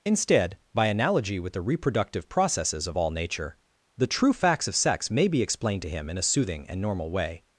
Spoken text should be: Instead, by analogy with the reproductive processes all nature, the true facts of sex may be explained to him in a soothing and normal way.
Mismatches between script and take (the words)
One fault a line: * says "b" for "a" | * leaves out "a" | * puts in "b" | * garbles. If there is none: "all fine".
* puts in "of"